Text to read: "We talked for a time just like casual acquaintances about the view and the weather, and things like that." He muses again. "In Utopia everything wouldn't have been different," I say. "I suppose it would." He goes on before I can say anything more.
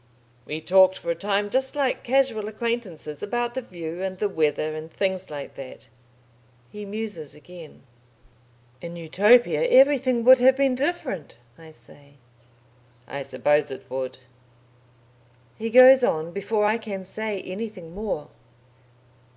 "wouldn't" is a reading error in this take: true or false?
true